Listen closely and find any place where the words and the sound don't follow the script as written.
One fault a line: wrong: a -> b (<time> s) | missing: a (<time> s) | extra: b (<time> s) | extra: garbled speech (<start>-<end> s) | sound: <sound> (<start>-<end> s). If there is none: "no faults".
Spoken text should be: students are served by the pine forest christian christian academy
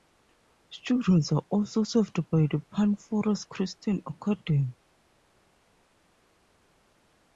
extra: also (1.5 s)
missing: christian (4.0 s)